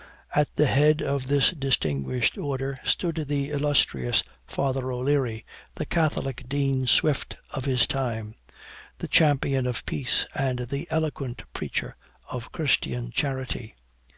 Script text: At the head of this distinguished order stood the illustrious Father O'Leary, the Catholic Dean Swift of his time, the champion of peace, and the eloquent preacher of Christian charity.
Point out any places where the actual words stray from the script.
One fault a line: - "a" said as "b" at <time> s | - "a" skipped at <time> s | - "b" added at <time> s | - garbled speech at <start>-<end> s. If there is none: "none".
none